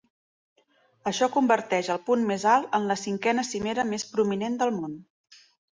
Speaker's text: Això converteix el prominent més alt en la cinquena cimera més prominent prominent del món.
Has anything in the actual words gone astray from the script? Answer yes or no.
yes